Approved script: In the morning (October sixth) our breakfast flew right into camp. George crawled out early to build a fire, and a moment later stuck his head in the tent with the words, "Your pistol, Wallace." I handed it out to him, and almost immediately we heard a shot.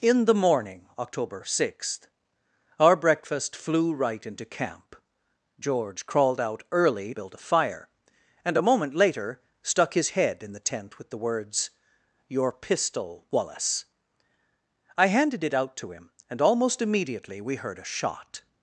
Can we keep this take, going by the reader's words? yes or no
no